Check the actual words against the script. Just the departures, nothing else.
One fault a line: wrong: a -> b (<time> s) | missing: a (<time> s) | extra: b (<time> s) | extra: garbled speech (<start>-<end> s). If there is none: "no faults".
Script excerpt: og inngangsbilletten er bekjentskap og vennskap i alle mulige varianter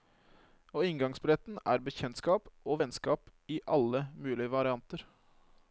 no faults